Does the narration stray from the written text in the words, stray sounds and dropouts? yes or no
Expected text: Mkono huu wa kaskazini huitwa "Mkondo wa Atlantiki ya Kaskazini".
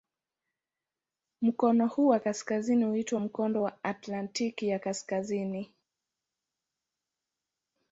no